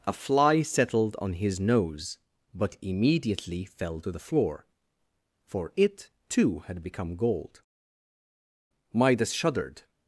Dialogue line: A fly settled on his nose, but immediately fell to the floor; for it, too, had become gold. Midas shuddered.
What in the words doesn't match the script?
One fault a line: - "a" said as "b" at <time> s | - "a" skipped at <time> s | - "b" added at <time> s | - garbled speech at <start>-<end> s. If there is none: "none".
none